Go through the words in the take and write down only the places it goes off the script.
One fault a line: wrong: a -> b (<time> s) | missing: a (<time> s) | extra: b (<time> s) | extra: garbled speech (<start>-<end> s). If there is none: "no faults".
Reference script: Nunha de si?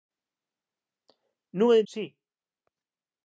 no faults